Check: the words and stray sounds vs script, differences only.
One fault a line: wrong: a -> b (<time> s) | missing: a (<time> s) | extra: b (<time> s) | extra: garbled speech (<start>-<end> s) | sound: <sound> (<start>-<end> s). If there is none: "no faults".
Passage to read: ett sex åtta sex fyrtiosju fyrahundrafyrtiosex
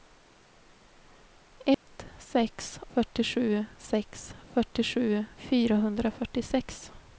sound: dropout (1.7-1.9 s)
wrong: åtta -> fyrtiosju (2.9 s)